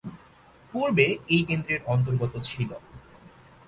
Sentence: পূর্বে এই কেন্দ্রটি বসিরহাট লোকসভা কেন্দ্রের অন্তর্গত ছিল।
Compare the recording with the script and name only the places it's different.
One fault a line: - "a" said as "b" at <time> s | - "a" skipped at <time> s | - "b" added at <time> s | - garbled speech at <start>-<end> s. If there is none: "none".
- "কেন্দ্রটি বসিরহাট লোকসভা" skipped at 1.4 s